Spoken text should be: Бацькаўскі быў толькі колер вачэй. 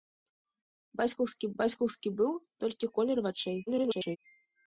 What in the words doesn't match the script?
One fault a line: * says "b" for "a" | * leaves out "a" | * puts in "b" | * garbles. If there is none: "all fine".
* puts in "бацькаўскі"
* garbles